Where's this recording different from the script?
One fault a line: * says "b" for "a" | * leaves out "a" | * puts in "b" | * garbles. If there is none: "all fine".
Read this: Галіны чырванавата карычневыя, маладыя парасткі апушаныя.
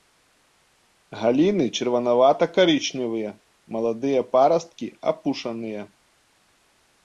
all fine